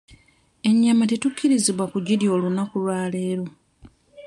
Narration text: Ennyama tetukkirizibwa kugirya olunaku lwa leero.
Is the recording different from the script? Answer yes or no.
no